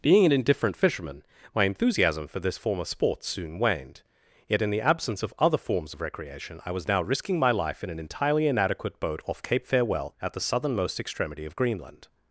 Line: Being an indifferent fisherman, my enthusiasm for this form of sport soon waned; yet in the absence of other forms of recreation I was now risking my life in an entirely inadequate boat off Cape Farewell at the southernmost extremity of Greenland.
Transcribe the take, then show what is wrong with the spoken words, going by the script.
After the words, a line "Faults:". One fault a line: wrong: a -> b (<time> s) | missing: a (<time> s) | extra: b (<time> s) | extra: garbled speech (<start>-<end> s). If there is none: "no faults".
Being an indifferent fisherman, my enthusiasm for this form of sport soon waned; yet in the absence of other forms of recreation I was now risking my life in an entirely inadequate boat off Cape Farewell at the southernmost extremity of Greenland.
Faults:
no faults